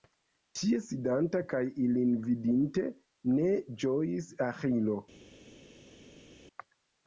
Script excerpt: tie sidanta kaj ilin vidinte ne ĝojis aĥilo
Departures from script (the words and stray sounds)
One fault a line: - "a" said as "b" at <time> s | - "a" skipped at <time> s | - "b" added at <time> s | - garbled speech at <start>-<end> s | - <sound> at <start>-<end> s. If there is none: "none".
none